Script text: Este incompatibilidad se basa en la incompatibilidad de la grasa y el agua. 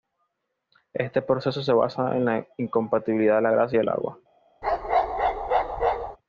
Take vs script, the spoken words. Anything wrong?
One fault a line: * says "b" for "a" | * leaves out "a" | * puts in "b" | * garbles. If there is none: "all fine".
* says "proceso" for "incompatibilidad"